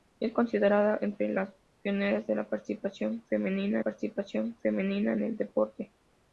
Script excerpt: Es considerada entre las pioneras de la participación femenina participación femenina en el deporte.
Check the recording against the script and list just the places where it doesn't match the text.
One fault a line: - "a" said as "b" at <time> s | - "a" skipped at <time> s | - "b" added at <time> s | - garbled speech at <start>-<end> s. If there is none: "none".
none